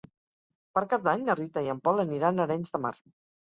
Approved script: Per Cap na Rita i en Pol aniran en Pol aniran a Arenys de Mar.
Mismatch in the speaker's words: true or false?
true